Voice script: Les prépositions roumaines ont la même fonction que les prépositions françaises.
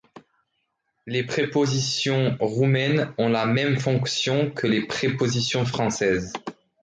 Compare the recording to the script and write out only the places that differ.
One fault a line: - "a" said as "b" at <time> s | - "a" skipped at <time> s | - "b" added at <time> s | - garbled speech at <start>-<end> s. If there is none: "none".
none